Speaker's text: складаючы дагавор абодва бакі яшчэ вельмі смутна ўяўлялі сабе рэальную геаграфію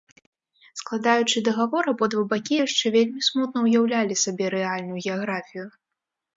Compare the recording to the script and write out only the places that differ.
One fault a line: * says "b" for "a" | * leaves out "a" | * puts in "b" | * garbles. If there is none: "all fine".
all fine